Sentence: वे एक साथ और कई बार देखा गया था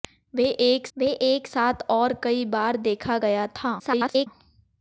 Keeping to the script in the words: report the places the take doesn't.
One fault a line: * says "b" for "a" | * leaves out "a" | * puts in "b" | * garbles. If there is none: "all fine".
* puts in "वे एक"
* garbles